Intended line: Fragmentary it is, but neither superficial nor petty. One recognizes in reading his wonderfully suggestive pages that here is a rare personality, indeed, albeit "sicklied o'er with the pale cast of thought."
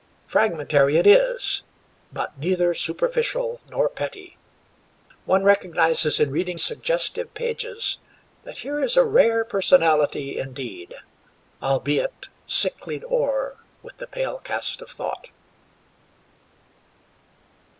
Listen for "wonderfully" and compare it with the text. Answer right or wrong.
wrong